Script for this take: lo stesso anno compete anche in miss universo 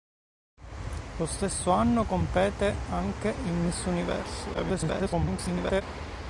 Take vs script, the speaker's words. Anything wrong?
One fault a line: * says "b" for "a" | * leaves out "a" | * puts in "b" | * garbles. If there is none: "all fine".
* garbles